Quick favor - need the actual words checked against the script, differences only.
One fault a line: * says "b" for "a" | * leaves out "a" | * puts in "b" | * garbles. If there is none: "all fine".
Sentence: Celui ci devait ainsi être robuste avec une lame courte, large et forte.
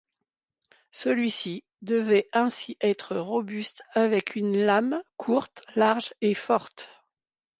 all fine